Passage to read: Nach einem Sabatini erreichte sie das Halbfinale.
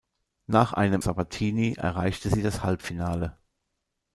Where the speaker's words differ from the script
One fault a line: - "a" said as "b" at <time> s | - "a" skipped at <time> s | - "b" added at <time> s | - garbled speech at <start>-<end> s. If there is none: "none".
none